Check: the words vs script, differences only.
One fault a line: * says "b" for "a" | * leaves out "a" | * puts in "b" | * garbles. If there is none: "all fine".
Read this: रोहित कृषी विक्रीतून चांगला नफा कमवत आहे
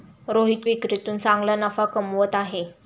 * leaves out "कृषी"